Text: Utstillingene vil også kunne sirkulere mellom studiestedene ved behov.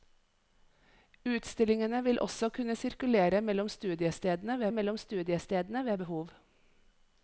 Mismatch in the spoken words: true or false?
true